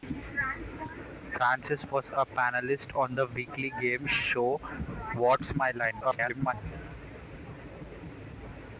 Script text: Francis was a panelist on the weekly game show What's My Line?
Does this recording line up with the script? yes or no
no